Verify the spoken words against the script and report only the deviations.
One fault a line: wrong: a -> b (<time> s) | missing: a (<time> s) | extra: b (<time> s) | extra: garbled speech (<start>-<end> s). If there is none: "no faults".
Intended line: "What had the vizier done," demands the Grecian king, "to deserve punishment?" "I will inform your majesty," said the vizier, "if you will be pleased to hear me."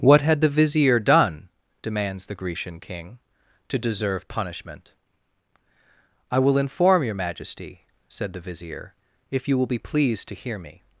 no faults